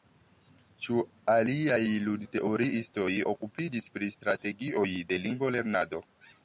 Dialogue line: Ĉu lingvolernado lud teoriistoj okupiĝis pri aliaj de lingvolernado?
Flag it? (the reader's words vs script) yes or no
yes